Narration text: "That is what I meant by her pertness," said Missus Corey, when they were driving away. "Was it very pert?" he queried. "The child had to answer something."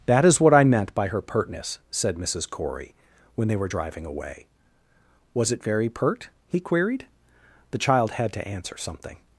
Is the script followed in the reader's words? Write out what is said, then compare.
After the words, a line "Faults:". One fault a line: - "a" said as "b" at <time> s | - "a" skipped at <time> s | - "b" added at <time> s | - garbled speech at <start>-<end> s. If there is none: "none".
"That is what I meant by her pertness," said Missus Corey, when they were driving away. "Was it very pert?" he queried. "The child had to answer something."
Faults:
none